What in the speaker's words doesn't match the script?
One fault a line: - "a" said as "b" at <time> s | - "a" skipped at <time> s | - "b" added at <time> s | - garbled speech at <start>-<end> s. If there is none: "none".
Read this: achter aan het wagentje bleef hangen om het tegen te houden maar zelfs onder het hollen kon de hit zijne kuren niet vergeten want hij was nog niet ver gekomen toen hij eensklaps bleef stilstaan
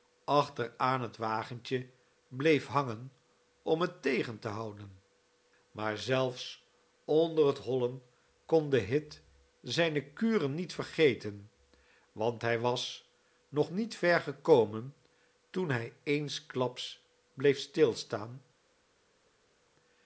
none